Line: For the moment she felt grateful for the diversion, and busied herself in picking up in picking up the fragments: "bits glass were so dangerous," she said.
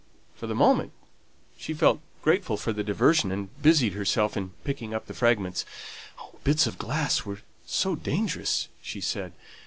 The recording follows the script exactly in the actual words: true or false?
false